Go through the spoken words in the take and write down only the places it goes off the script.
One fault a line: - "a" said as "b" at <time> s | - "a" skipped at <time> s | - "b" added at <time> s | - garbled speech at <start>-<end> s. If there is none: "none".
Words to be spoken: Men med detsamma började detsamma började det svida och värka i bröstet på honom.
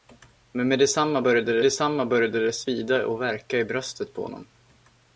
none